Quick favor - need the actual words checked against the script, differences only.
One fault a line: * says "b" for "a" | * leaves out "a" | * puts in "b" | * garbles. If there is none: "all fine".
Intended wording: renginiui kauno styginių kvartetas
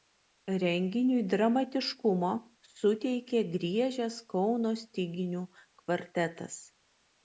* puts in "dramatiškumo suteikė griežęs"